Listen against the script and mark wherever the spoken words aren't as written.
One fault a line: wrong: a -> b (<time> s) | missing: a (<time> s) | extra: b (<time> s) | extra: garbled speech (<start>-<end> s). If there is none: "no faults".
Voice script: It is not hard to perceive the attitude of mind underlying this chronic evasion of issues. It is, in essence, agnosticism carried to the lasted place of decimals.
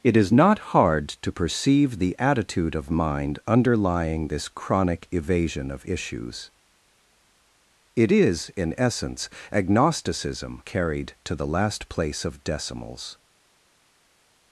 wrong: lasted -> last (11.5 s)